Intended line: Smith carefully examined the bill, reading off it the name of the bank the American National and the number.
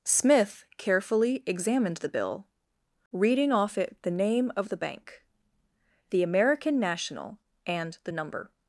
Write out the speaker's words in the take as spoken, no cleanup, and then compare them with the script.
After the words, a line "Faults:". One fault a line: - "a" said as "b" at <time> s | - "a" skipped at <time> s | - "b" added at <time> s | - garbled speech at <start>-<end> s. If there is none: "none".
Smith carefully examined the bill, reading off it the name of the bank the American National and the number.
Faults:
none